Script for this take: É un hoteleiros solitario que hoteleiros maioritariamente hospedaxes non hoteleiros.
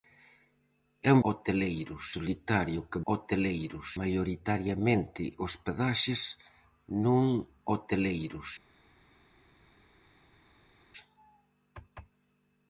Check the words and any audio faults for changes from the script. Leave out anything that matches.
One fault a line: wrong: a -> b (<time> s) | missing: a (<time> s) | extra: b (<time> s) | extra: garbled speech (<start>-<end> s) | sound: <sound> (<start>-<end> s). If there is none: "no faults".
no faults